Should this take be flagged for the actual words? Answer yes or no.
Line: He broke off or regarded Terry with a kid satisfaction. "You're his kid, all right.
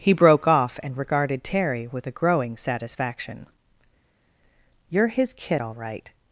yes